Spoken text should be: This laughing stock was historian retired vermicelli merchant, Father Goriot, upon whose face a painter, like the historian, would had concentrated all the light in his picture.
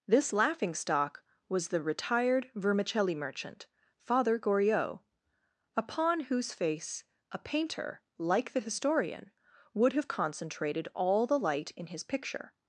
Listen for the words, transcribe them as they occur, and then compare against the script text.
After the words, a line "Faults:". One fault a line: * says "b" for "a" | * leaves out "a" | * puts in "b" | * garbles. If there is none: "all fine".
This laughing stock was the retired vermicelli merchant, Father Goriot, upon whose face a painter, like the historian, would have concentrated all the light in his picture.
Faults:
* says "the" for "historian"
* says "have" for "had"